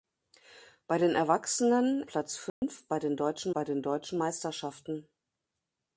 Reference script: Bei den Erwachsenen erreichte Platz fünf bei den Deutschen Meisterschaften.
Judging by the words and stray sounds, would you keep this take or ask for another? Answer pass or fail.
fail